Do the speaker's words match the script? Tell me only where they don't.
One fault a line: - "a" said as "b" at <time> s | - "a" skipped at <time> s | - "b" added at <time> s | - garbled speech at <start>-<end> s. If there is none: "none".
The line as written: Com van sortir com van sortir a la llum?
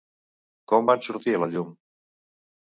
- "com van sortir" skipped at 1.4 s